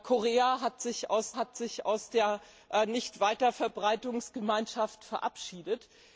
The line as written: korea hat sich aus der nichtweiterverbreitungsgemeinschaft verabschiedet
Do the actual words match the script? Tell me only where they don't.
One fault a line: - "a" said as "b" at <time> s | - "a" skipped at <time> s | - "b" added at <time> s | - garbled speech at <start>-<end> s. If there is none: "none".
- "hat sich aus" added at 1.4 s